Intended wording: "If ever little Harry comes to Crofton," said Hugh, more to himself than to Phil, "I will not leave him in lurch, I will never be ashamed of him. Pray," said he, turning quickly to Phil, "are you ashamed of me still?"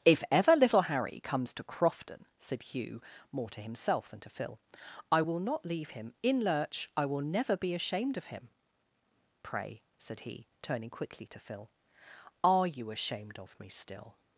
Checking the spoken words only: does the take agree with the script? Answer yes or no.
yes